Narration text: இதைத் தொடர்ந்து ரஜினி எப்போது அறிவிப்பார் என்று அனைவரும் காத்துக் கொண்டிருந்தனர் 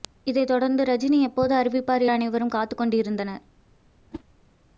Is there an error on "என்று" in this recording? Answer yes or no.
yes